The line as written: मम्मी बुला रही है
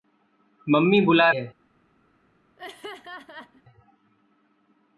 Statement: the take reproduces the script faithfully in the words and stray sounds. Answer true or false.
false